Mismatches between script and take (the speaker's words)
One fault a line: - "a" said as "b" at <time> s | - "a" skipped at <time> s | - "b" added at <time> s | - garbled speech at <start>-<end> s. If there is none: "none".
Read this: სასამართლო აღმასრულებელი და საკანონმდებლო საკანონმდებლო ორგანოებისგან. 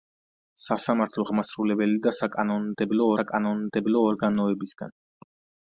none